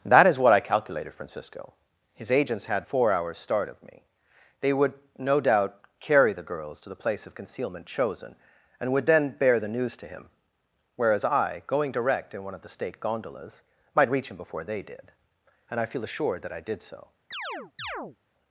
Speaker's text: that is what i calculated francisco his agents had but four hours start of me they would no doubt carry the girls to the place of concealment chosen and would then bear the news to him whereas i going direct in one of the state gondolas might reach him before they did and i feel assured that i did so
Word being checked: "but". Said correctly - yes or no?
no